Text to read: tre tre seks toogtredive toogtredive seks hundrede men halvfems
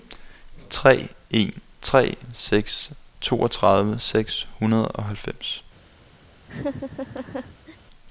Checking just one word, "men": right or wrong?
wrong